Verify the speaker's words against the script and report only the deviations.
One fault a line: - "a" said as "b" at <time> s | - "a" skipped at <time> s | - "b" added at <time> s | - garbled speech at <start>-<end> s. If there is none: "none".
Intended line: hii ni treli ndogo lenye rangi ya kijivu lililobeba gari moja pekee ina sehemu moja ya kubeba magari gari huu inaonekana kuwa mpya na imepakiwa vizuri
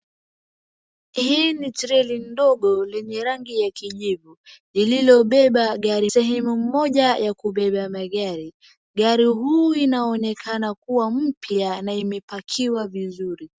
- "moja pekee ina" skipped at 6.1 s